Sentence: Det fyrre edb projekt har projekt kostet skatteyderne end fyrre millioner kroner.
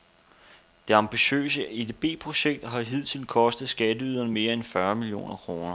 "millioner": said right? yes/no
yes